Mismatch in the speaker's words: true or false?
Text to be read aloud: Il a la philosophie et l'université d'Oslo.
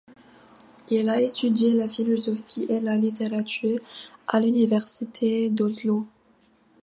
true